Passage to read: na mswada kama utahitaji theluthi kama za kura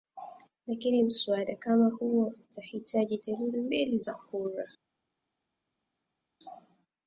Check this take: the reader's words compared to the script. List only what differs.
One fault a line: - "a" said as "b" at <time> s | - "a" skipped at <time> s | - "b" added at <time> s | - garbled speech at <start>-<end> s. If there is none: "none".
- "na" said as "lakini" at 0.7 s
- "huo" added at 1.9 s
- "kama" said as "mbili" at 3.6 s